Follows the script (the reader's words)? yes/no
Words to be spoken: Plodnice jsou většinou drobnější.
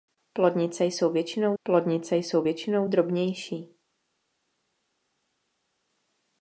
no